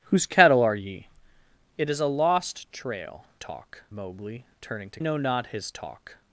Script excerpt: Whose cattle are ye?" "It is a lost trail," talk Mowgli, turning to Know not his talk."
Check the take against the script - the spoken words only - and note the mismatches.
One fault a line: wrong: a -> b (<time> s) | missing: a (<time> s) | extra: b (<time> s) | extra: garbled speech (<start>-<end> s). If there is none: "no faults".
no faults